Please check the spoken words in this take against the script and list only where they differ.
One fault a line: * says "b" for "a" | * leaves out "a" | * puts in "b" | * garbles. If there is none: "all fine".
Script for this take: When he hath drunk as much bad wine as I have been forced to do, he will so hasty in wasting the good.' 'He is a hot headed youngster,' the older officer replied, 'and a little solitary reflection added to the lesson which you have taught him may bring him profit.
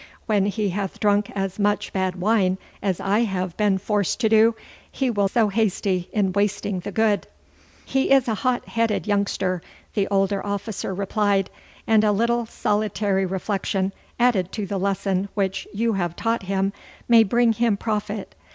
all fine